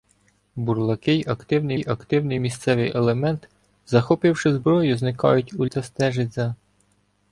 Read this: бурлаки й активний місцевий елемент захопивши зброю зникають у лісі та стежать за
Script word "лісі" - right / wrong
wrong